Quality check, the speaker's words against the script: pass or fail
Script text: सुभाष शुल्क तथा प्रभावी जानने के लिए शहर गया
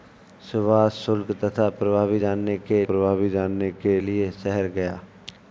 fail